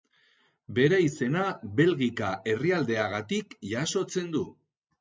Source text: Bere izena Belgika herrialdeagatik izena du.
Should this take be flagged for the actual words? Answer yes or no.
yes